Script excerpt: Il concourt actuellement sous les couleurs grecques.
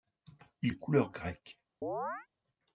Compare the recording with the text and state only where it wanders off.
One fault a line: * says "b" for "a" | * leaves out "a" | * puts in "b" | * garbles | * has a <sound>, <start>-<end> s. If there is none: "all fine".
* leaves out "concourt actuellement sous"
* has a chirp, 1.8-2.3 s